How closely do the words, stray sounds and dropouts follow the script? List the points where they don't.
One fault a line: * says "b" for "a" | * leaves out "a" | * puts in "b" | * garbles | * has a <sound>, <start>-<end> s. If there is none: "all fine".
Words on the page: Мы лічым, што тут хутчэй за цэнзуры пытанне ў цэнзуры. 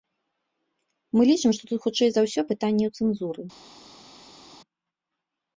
* says "ўсё" for "цэнзуры"